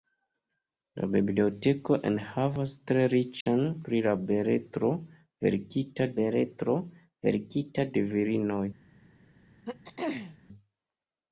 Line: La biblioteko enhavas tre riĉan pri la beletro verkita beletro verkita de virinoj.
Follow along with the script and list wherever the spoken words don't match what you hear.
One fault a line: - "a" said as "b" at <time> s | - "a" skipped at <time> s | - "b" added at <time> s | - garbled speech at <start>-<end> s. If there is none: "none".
none